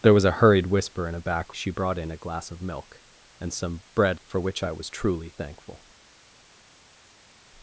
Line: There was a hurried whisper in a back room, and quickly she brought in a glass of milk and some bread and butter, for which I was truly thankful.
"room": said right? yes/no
no